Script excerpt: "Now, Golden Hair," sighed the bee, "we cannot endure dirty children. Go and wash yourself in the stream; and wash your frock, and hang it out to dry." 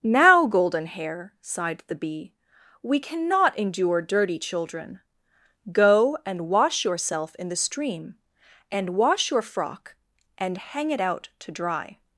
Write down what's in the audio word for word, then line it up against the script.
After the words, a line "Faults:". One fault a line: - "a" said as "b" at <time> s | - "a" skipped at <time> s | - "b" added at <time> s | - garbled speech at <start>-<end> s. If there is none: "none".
"Now, Golden Hair," sighed the bee, "we cannot endure dirty children. Go and wash yourself in the stream; and wash your frock, and hang it out to dry."
Faults:
none